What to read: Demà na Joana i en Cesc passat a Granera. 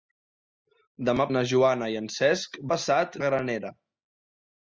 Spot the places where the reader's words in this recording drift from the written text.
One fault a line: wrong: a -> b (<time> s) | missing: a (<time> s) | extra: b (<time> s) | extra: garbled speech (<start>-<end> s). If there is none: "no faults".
no faults